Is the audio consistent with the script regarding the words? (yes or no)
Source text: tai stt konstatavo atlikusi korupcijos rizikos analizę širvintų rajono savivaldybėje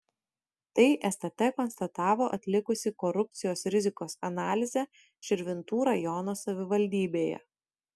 yes